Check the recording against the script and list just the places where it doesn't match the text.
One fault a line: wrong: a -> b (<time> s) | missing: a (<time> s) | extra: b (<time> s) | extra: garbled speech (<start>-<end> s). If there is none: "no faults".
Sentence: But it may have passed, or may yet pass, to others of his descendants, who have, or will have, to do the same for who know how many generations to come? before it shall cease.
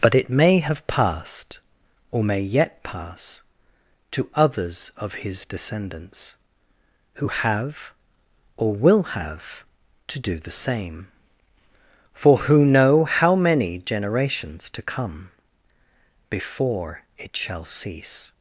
no faults